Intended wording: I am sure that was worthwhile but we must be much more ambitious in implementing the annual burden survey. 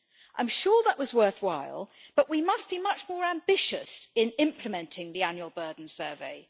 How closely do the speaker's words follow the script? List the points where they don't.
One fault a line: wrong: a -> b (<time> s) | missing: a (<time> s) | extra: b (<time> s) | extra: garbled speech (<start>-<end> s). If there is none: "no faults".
no faults